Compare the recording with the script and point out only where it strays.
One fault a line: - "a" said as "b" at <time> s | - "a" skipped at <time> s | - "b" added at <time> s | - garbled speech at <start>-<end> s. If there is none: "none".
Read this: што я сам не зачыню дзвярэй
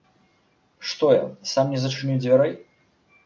none